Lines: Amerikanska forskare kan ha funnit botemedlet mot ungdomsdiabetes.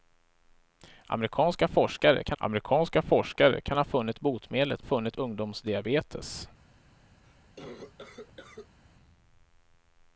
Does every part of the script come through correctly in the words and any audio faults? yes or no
no